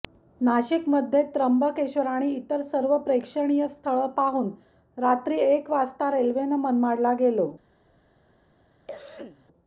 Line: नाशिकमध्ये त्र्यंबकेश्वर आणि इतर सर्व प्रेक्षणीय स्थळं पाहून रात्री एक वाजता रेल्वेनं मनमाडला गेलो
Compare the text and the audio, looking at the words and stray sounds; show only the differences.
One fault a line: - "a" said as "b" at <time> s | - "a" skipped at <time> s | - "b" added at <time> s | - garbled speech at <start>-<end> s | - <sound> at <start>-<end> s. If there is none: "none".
- cough at 8.9-9.5 s